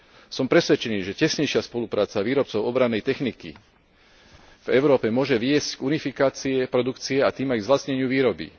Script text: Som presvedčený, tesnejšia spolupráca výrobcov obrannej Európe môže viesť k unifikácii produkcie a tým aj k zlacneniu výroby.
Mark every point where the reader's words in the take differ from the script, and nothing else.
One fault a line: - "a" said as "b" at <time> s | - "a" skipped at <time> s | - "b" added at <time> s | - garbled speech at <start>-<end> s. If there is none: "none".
- "že" added at 1.0 s
- "techniky v" added at 3.0 s